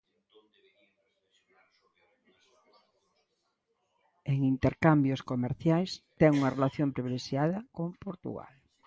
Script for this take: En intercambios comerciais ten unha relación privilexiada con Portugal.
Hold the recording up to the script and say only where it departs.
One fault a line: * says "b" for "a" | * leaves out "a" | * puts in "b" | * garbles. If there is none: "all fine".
all fine